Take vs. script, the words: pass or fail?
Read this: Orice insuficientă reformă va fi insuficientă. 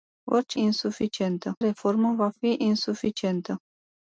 pass